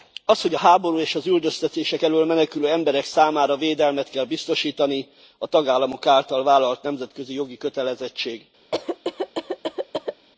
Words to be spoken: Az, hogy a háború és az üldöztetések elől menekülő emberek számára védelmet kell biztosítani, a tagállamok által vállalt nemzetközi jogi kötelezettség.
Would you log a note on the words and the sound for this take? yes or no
yes